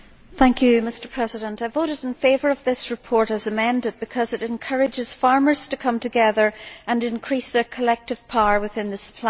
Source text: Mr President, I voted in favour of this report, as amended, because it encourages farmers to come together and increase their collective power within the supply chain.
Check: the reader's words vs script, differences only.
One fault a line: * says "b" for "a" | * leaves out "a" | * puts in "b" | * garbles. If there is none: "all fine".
all fine